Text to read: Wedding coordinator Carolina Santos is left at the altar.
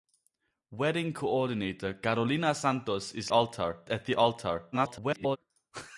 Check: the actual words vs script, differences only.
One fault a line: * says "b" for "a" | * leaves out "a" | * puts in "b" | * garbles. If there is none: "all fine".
* says "altar" for "left"
* garbles